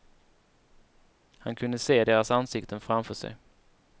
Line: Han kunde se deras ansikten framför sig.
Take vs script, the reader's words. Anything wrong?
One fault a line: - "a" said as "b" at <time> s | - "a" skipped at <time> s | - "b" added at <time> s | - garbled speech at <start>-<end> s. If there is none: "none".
none